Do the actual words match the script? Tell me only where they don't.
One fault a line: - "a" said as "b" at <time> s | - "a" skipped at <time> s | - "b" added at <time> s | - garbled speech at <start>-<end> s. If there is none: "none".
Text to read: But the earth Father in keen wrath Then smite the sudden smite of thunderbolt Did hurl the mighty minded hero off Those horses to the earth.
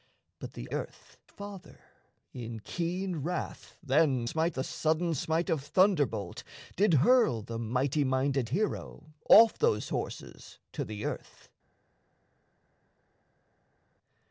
none